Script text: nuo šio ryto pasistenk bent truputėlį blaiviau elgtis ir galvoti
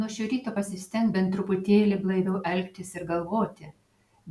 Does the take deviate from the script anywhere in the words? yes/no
no